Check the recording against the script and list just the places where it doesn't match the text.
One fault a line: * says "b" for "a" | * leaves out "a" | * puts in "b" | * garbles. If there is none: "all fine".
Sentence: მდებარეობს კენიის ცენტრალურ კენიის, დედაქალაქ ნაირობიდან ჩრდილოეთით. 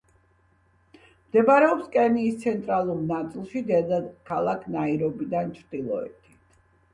* says "ნაწილში" for "კენიის"